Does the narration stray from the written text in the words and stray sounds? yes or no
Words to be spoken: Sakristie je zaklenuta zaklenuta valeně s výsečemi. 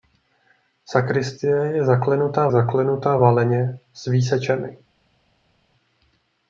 no